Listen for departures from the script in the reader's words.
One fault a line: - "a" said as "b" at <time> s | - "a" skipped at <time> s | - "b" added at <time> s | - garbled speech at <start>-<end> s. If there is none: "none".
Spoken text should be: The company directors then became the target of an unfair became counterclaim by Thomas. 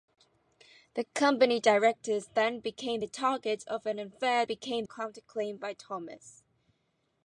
none